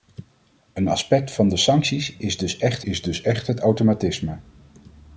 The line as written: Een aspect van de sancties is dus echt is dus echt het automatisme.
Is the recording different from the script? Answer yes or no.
no